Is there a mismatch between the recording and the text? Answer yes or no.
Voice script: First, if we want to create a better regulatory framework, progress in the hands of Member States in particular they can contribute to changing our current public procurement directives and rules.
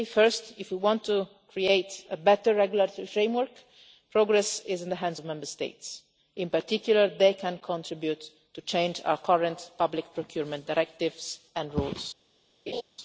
yes